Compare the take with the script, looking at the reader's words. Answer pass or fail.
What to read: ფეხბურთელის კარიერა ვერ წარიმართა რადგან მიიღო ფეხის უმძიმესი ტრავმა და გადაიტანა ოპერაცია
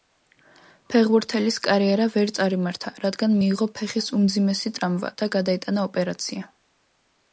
pass